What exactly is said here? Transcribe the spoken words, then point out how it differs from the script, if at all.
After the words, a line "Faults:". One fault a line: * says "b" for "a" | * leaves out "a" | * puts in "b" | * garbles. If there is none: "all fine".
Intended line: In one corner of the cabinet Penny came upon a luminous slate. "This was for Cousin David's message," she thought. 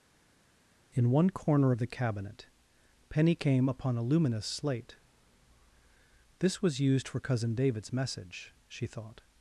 In one corner of the cabinet Penny came upon a luminous slate. "This was used for Cousin David's message," she thought.
Faults:
* puts in "used"